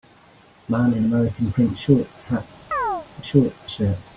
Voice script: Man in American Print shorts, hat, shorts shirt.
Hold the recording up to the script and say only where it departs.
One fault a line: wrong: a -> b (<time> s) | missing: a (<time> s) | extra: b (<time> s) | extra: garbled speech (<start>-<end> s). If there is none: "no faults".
no faults